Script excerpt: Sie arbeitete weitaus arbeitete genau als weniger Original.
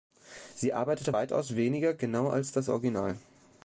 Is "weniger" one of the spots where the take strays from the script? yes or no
yes